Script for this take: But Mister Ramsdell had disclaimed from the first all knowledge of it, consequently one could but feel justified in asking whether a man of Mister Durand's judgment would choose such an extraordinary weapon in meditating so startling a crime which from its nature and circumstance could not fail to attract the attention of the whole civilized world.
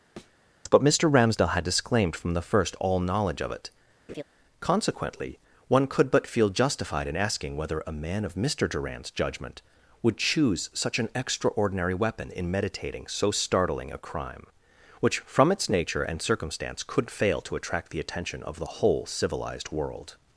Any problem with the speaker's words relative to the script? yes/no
yes